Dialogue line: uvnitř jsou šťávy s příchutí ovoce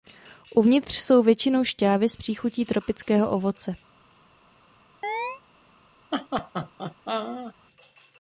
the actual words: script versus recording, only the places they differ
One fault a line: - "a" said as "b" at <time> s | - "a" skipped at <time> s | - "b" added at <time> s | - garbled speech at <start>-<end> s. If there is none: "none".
- "většinou" added at 1.2 s
- "tropického" added at 2.6 s